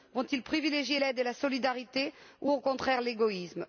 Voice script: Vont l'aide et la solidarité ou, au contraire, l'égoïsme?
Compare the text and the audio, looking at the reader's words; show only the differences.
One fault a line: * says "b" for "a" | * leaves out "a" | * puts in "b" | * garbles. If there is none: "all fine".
* puts in "ils privilégier"